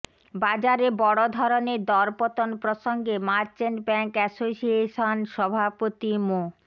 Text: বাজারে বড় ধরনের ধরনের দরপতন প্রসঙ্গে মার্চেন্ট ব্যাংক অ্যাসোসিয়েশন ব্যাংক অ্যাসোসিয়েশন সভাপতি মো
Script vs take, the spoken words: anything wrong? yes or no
yes